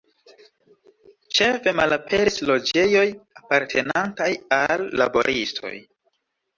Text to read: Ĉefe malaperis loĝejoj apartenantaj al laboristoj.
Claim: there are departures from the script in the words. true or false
false